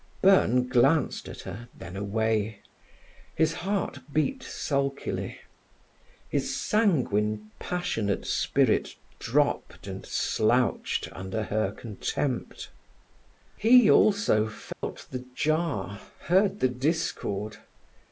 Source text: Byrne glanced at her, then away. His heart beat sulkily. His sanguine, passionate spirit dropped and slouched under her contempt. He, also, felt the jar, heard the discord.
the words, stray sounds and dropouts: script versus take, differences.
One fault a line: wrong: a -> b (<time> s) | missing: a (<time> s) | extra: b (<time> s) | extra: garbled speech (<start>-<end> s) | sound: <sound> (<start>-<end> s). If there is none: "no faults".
sound: dropout (14.7-14.8 s)